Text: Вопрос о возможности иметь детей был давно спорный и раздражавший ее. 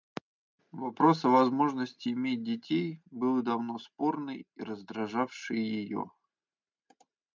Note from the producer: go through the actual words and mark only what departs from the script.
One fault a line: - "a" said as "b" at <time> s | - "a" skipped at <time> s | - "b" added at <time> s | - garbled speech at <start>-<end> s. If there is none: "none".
none